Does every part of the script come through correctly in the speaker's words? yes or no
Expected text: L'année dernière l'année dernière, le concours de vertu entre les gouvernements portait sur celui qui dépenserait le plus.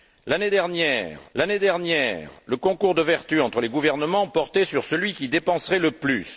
yes